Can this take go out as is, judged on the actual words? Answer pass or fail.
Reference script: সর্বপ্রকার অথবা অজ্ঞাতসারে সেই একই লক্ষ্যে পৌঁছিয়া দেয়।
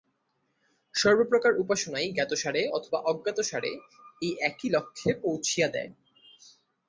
fail